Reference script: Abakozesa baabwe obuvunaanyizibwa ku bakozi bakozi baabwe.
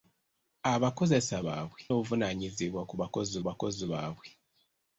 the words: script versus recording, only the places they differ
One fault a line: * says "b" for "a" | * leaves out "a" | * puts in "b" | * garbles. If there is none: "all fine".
all fine